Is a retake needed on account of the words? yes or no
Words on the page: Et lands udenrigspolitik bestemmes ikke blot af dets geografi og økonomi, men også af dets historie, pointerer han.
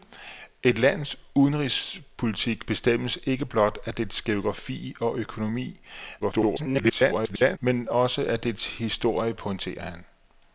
yes